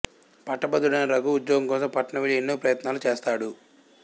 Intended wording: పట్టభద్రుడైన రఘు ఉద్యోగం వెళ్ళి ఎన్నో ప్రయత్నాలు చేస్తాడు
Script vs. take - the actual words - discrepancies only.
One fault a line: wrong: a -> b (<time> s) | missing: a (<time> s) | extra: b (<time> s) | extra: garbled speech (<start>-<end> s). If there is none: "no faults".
extra: కోసం పట్నం (1.7 s)